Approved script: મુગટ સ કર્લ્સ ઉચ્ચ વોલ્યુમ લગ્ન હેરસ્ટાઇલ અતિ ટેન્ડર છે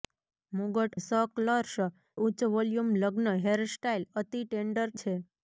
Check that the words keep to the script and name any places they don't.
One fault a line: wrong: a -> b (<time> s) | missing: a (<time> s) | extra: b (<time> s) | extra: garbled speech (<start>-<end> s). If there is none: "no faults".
no faults